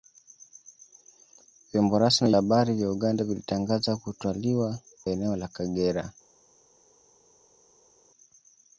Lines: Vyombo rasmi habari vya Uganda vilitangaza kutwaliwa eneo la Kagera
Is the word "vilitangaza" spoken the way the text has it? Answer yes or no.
yes